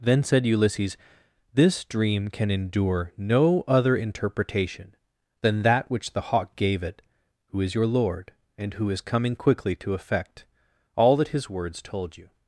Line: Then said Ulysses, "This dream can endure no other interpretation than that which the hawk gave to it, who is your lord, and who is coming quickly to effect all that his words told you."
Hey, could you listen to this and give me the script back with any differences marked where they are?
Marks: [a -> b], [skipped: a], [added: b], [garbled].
Then said Ulysses, "This dream can endure no other interpretation than that which the hawk gave [skipped: to] it, who is your lord, and who is coming quickly to effect all that his words told you."